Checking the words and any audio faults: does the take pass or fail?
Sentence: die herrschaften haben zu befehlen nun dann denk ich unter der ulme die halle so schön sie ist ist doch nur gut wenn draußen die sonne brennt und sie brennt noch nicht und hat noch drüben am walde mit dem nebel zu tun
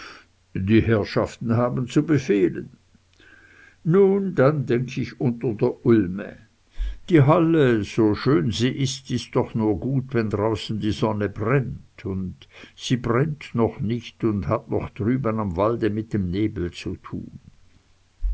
pass